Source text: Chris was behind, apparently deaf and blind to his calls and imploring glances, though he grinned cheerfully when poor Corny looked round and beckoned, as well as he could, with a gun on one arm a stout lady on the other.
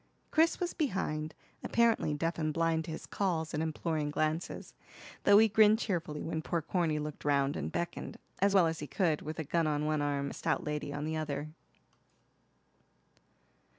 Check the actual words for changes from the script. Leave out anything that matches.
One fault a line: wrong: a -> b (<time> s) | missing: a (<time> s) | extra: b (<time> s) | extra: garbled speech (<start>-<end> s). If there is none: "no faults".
no faults